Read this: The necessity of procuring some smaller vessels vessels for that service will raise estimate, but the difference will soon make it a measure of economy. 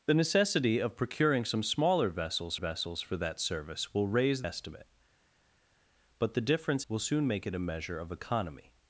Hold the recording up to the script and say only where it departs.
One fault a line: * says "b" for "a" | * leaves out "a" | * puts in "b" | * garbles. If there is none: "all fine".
all fine